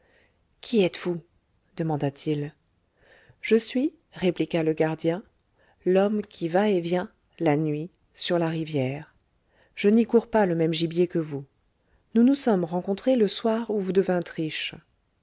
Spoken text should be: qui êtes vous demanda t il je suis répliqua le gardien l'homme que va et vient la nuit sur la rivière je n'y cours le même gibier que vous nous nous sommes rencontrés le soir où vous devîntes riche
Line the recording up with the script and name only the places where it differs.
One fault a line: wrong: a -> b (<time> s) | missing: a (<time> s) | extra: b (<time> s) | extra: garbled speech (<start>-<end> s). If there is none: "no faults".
wrong: que -> qui (6.2 s)
extra: pas (10.3 s)